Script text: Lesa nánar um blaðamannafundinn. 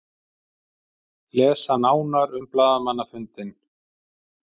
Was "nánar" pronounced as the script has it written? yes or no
yes